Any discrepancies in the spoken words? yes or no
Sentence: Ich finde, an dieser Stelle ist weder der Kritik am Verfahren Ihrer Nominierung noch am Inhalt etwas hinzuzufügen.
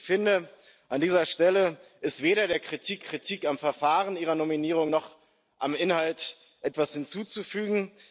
yes